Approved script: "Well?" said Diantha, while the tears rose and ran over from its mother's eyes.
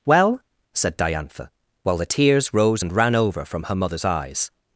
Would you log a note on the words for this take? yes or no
yes